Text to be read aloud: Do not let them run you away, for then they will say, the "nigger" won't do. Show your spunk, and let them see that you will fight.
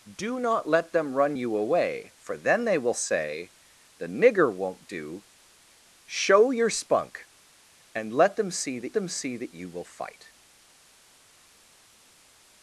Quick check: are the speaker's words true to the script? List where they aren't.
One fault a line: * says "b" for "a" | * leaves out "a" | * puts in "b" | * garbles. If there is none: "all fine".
* puts in "them see that"